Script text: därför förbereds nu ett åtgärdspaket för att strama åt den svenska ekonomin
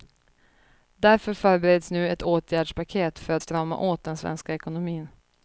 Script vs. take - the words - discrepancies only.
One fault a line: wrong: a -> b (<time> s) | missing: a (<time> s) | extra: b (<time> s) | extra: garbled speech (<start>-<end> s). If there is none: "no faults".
no faults